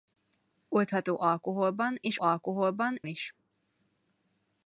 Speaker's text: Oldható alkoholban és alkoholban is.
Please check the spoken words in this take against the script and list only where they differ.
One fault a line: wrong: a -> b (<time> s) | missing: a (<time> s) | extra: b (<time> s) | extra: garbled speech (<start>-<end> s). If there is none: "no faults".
no faults